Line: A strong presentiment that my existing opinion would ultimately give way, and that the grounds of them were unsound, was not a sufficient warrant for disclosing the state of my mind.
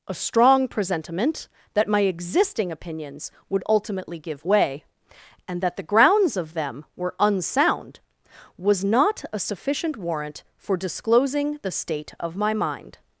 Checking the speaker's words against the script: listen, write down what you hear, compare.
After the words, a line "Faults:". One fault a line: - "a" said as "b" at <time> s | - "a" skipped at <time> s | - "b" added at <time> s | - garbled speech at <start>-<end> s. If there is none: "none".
A strong presentiment that my existing opinions would ultimately give way, and that the grounds of them were unsound, was not a sufficient warrant for disclosing the state of my mind.
Faults:
- "opinion" said as "opinions" at 2.7 s